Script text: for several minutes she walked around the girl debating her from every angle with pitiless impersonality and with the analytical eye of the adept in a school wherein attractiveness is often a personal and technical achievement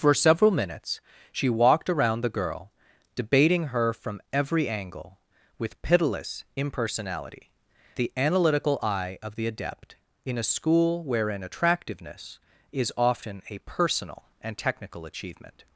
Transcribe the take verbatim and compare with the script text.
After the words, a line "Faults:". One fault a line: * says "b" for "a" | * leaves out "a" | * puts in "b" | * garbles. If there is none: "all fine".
for several minutes she walked around the girl debating her from every angle with pitiless impersonality the analytical eye of the adept in a school wherein attractiveness is often a personal and technical achievement
Faults:
* leaves out "and with"